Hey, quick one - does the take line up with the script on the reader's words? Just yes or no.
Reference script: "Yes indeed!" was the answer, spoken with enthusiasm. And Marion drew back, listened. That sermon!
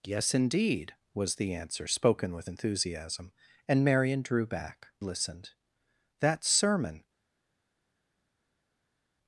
yes